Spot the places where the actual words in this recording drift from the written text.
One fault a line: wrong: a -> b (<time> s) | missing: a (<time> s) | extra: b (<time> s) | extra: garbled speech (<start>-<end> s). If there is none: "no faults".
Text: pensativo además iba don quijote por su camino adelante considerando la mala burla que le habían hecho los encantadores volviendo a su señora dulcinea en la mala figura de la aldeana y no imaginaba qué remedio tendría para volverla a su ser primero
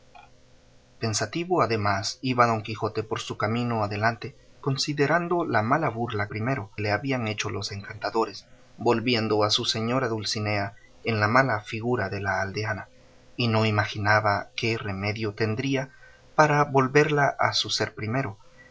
wrong: que -> primero (6.3 s)